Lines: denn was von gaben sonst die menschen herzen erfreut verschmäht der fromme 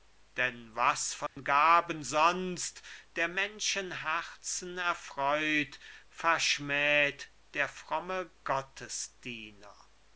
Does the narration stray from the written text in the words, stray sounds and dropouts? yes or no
yes